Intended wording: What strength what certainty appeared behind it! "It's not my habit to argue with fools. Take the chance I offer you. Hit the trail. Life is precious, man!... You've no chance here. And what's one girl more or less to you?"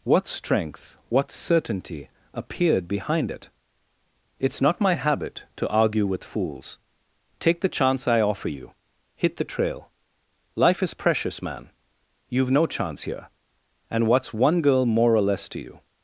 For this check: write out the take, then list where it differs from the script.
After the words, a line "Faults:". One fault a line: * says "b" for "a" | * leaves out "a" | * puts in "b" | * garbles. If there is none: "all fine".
What strength what certainty appeared behind it! "It's not my habit to argue with fools. Take the chance I offer you. Hit the trail. Life is precious, man!... You've no chance here. And what's one girl more or less to you?"
Faults:
all fine